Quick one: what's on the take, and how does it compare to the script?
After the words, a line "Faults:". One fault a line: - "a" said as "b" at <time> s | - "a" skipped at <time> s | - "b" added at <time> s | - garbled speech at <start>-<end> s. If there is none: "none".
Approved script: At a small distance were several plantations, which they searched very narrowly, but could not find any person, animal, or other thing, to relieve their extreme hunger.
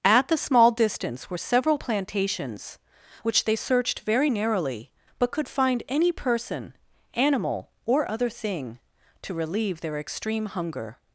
At the small distance were several plantations, which they searched very narrowly, but could find any person, animal, or other thing, to relieve their extreme hunger.
Faults:
- "a" said as "the" at 0.3 s
- "not" skipped at 5.5 s